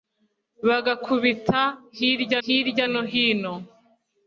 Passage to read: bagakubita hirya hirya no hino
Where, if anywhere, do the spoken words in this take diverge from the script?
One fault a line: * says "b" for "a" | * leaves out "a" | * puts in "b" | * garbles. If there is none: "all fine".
all fine